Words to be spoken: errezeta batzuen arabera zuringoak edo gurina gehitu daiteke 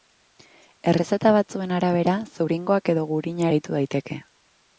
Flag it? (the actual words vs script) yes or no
no